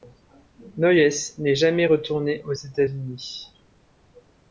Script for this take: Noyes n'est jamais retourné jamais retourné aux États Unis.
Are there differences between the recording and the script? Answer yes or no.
yes